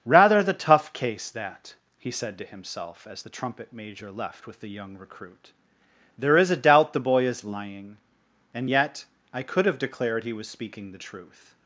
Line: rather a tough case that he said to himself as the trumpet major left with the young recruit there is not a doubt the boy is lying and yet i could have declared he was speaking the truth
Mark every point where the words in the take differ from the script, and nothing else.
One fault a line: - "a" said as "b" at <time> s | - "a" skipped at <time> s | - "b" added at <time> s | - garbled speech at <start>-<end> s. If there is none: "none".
- "a" said as "the" at 0.4 s
- "not" skipped at 6.5 s